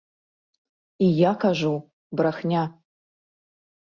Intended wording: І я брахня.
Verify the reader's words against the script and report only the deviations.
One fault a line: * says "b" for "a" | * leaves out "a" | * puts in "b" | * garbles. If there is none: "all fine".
* puts in "кажу"